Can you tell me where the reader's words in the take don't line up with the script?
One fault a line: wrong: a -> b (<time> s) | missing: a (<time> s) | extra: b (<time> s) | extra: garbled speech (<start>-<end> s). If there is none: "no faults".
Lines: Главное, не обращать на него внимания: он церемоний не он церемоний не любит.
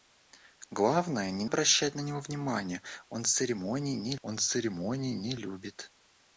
no faults